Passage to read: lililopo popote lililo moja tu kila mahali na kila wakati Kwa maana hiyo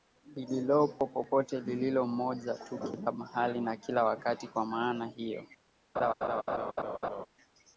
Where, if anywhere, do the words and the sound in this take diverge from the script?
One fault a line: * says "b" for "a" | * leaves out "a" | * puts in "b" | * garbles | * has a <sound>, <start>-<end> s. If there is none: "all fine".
* has a laugh, 6.0-7.3 s